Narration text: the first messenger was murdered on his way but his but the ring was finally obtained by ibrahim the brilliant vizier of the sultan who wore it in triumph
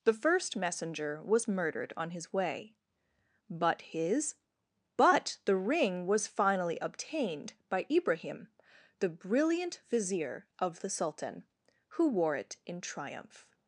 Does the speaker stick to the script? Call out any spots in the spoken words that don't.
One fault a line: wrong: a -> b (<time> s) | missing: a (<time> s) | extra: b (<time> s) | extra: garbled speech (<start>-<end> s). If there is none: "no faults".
no faults